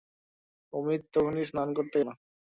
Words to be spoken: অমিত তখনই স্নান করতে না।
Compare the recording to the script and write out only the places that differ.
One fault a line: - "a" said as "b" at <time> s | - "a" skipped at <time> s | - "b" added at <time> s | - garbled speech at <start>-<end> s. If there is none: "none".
none